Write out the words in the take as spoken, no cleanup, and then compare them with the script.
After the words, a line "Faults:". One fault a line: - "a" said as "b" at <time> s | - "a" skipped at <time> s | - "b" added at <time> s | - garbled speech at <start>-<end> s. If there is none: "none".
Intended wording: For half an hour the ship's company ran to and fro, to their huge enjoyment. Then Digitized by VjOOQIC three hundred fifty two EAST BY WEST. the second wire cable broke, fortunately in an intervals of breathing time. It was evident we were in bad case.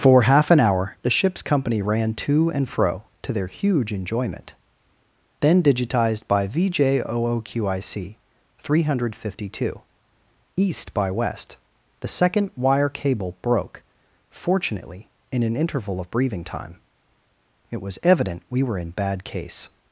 For half an hour the ship's company ran to and fro, to their huge enjoyment. Then Digitized by VjOOQIC three hundred fifty two EAST BY WEST. the second wire cable broke, fortunately in an interval of breathing time. It was evident we were in bad case.
Faults:
- "intervals" said as "interval" at 15.6 s